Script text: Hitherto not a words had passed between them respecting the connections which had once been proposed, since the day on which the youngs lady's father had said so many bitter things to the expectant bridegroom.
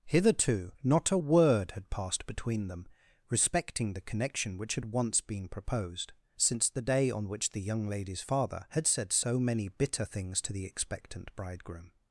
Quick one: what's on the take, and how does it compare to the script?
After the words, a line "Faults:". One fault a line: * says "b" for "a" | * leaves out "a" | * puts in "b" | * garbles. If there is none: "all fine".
Hitherto not a word had passed between them respecting the connection which had once been proposed, since the day on which the young lady's father had said so many bitter things to the expectant bridegroom.
Faults:
* says "word" for "words"
* says "connection" for "connections"
* says "young" for "youngs"